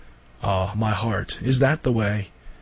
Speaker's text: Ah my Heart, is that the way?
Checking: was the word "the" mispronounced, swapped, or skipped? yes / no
no